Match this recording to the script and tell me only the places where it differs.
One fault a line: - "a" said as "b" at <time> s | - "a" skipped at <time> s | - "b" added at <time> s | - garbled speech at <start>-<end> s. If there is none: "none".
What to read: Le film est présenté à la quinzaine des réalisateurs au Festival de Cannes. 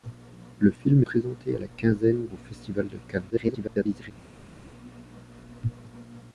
- "est" skipped at 1.0 s
- "des réalisateurs" skipped at 2.3 s
- garbled speech at 3.3-4.1 s